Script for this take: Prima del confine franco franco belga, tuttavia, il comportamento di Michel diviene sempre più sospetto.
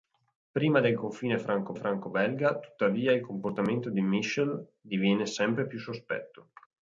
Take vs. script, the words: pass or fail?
pass